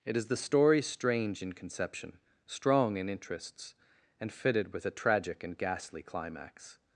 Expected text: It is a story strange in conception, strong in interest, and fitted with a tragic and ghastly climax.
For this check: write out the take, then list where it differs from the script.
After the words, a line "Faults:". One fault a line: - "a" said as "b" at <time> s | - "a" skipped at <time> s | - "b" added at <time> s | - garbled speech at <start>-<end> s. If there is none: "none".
It is the story strange in conception, strong in interests, and fitted with a tragic and ghastly climax.
Faults:
- "a" said as "the" at 0.3 s
- "interest" said as "interests" at 3.1 s